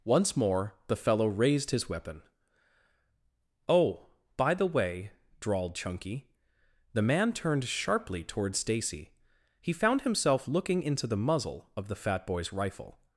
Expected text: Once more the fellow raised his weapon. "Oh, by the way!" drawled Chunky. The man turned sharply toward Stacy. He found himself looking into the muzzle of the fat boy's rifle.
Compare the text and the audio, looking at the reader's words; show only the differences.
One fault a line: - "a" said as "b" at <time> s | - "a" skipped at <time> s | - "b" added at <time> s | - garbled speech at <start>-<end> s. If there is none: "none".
none